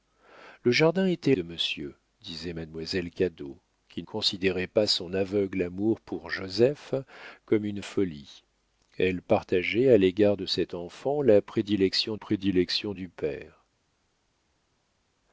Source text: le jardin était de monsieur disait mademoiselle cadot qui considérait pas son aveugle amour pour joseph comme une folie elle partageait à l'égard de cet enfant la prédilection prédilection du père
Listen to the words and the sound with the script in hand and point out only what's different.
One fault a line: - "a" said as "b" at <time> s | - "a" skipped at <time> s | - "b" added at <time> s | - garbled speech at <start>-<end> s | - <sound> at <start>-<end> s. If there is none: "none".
none